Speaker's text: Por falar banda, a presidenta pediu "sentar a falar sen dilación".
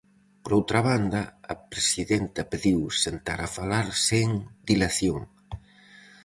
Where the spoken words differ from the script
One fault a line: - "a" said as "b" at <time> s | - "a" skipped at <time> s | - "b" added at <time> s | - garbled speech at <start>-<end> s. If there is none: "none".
- "falar" said as "outra" at 0.6 s